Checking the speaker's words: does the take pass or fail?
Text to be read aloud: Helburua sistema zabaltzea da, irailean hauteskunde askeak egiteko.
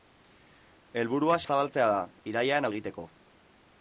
fail